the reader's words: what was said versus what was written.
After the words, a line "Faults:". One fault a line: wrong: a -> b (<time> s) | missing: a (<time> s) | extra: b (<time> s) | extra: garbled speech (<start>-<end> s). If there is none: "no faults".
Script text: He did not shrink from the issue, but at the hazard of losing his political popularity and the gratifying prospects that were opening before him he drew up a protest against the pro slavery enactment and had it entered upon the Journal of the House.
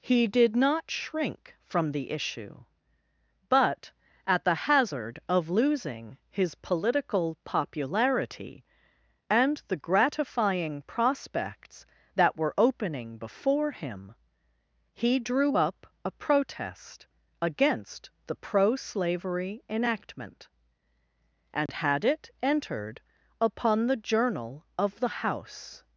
He did not shrink from the issue, but at the hazard of losing his political popularity and the gratifying prospects that were opening before him he drew up a protest against the pro slavery enactment and had it entered upon the Journal of the House.
Faults:
no faults